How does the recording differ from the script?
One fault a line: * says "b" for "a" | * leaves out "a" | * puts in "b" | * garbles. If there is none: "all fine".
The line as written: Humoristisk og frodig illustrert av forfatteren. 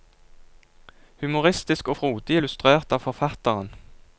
all fine